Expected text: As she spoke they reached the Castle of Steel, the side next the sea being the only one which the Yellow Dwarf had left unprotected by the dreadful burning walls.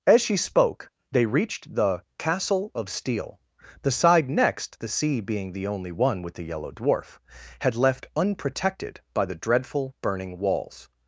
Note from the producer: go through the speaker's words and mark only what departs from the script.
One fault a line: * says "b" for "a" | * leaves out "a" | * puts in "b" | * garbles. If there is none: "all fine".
* says "with" for "which"